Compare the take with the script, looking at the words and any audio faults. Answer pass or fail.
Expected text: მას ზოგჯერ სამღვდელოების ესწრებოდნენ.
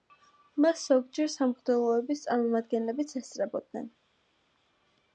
fail